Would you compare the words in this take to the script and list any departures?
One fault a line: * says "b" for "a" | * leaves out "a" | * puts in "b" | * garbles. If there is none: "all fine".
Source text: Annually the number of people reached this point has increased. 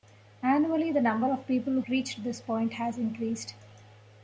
all fine